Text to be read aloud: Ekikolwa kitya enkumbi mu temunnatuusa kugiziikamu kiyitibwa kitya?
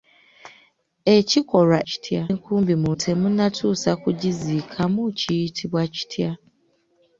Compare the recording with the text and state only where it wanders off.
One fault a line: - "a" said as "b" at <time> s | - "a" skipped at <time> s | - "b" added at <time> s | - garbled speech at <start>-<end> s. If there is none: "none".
none